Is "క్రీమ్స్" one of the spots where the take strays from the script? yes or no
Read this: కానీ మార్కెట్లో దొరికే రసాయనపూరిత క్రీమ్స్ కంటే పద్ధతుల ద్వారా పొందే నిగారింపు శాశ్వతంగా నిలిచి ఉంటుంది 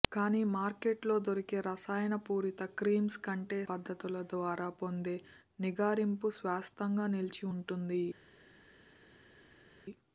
no